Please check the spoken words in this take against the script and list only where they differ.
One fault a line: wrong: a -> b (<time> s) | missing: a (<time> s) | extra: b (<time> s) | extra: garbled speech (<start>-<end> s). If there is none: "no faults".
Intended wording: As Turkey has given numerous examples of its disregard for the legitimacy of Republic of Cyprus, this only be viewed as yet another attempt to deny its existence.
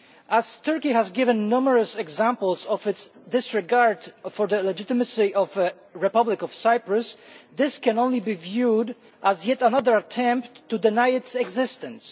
extra: the (5.5 s)
extra: can (7.8 s)